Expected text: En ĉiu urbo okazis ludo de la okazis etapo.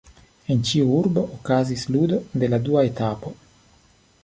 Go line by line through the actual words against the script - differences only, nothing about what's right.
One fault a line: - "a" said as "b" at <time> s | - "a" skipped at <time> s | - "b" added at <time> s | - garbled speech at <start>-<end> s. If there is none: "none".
- "okazis" said as "dua" at 2.7 s